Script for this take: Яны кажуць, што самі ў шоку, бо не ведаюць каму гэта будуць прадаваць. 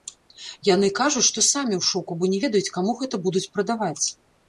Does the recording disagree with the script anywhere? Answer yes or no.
no